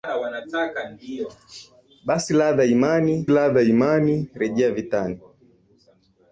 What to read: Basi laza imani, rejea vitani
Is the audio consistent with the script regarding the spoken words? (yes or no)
no